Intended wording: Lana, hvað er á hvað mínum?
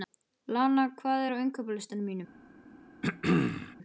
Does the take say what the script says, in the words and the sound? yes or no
no